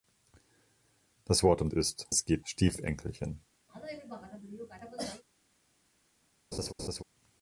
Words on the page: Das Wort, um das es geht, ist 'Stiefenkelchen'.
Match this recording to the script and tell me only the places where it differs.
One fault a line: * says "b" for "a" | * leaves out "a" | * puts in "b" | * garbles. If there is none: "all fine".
* says "ist" for "das"
* leaves out "ist"